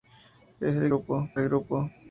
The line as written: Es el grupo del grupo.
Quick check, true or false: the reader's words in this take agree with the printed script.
true